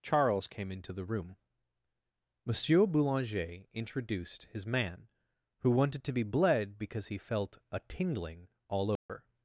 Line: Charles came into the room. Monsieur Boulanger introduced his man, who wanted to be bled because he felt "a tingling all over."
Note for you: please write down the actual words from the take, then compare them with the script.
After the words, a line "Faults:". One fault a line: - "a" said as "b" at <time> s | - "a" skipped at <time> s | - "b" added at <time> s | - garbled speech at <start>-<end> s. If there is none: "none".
Charles came into the room. Monsieur Boulanger introduced his man, who wanted to be bled because he felt "a tingling all over."
Faults:
none